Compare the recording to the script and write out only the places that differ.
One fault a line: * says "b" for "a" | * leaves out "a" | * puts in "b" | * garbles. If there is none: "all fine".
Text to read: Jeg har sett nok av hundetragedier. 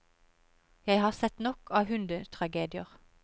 all fine